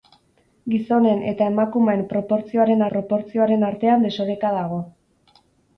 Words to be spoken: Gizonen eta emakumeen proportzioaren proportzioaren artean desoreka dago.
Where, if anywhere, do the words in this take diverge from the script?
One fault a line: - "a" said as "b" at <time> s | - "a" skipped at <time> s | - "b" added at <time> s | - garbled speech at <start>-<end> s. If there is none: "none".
none